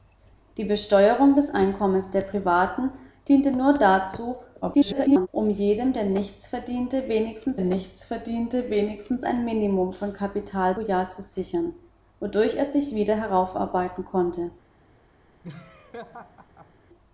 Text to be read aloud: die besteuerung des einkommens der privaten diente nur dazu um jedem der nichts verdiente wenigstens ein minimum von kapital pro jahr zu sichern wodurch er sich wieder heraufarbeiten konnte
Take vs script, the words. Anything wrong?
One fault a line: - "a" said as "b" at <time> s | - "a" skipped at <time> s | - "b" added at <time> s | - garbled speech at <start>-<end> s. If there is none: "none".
- garbled speech at 4.6-5.3 s
- "nichts verdiente wenigstens" added at 7.6 s
- "pro" skipped at 10.7 s